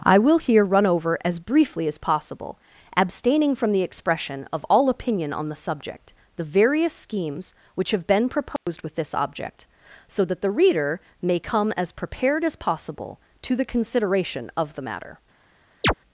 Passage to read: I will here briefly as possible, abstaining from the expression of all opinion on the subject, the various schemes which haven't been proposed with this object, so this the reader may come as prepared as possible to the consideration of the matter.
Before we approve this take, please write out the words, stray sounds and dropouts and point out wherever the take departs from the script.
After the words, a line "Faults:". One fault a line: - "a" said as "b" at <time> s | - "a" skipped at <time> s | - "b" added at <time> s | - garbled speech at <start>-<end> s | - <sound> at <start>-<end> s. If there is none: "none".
I will here run over as briefly as possible, abstaining from the expression of all opinion on the subject, the various schemes which have been proposed with this object, so that the reader may come as prepared as possible to the consideration of the matter.
Faults:
- "run over as" added at 0.7 s
- "haven't" said as "have" at 7.9 s
- dropout at 8.6-8.7 s
- "this" said as "that" at 10.2 s
- chirp at 15.8-15.9 s